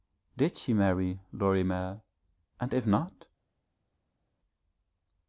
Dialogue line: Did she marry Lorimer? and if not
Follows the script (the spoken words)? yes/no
yes